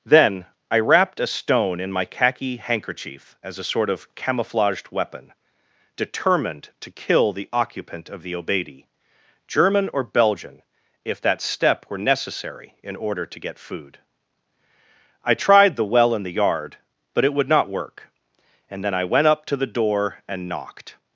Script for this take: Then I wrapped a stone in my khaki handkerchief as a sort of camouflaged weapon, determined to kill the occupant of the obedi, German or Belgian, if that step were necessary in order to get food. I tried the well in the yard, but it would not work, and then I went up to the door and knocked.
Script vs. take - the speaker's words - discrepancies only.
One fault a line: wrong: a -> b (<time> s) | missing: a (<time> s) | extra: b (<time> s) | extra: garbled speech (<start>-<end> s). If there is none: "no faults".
no faults